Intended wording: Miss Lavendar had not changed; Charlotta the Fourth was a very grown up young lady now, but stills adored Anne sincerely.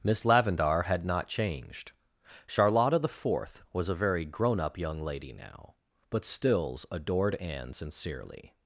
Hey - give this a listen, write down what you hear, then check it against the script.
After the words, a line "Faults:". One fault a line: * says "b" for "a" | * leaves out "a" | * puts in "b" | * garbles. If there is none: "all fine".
Miss Lavendar had not changed; Charlotta the Fourth was a very grown up young lady now, but stills adored Anne sincerely.
Faults:
all fine